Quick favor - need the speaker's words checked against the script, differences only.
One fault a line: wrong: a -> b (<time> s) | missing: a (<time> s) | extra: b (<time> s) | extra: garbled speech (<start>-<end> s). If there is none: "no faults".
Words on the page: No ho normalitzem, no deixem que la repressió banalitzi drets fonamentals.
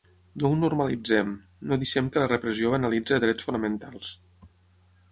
no faults